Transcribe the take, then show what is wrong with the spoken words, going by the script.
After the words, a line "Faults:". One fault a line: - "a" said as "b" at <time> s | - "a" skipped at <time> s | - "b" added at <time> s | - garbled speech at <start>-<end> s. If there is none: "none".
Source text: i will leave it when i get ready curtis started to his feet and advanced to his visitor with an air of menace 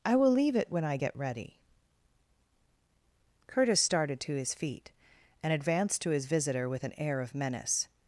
i will leave it when i get ready curtis started to his feet and advanced to his visitor with an air of menace
Faults:
none